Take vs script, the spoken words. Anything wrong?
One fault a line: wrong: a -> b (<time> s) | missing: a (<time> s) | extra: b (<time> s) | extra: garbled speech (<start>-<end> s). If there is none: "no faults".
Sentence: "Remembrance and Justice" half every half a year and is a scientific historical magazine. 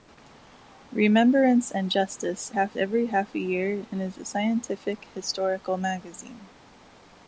no faults